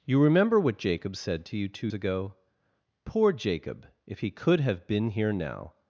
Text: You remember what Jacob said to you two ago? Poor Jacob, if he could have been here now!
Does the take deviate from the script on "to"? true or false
false